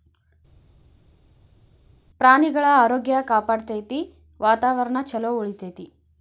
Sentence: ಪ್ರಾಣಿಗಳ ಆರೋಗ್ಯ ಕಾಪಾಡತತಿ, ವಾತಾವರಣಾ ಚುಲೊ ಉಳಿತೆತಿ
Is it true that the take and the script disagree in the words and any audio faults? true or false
false